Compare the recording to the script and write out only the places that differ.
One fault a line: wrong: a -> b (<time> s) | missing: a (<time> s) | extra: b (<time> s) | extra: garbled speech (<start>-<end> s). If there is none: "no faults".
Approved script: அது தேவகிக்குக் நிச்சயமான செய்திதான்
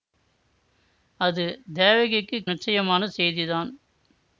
no faults